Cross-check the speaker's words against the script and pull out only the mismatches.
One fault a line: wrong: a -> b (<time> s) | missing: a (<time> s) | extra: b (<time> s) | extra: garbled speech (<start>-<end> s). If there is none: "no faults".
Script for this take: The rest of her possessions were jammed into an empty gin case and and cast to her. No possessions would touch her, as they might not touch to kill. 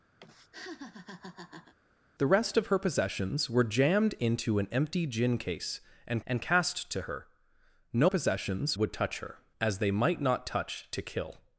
no faults